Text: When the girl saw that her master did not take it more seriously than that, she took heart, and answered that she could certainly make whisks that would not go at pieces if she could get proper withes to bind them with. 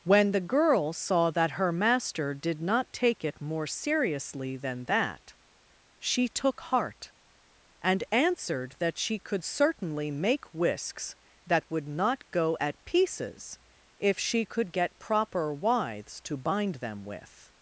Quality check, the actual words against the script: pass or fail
pass